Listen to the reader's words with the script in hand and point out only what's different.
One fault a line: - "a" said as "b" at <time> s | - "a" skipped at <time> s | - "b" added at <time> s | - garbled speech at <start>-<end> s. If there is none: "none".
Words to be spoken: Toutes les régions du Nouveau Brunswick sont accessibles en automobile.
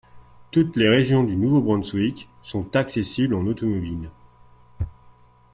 none